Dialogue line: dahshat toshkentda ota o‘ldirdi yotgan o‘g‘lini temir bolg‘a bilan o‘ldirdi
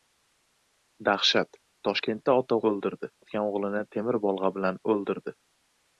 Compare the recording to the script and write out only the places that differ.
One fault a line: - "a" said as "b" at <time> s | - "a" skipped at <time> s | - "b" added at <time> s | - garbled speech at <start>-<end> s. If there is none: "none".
none